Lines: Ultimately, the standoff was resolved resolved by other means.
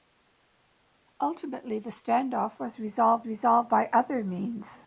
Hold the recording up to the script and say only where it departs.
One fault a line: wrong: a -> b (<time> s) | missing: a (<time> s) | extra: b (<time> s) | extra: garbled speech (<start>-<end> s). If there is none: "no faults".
no faults